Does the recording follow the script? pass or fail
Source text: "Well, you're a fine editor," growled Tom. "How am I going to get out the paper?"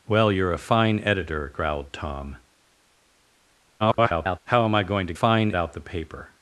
fail